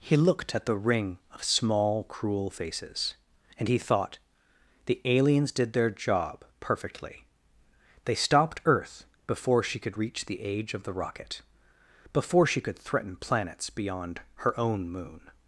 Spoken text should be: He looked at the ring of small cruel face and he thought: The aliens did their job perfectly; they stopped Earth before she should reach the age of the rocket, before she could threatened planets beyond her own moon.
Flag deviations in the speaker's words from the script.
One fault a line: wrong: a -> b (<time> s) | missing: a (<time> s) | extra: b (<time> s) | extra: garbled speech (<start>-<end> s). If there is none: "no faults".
wrong: face -> faces (2.5 s)
wrong: should -> could (9.8 s)
wrong: threatened -> threaten (12.8 s)